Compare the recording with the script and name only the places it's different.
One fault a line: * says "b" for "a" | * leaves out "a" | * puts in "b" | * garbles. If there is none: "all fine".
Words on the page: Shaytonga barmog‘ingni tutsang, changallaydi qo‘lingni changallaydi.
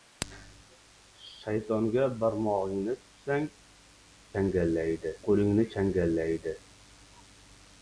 all fine